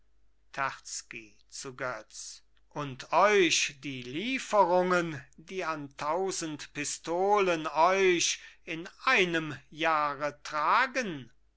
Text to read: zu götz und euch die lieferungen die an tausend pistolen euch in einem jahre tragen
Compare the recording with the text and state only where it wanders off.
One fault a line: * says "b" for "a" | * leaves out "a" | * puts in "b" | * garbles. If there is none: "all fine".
all fine